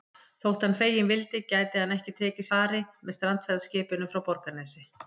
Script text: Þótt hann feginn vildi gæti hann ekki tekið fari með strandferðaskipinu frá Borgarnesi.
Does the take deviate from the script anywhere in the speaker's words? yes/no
no